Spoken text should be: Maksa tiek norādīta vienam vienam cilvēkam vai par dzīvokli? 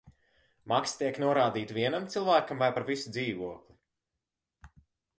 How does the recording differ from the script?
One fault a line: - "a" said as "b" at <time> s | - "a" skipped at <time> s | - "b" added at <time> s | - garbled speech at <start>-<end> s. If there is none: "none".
- "vienam" skipped at 2.1 s
- "visu" added at 2.9 s